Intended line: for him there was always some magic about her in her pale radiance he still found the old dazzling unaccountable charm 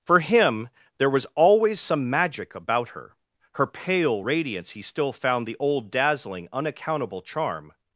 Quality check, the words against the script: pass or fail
fail